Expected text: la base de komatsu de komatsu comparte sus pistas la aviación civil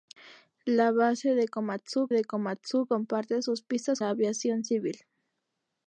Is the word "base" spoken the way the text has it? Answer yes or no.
yes